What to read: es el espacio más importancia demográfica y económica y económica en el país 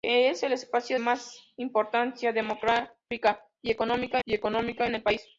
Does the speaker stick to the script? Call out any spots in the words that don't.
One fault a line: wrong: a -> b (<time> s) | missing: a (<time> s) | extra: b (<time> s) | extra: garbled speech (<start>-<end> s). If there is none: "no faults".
no faults